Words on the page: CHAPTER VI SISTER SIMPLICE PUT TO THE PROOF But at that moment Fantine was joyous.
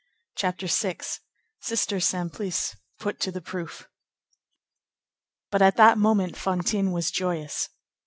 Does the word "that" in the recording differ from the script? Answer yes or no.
no